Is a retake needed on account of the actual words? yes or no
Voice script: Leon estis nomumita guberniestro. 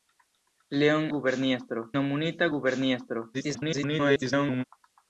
yes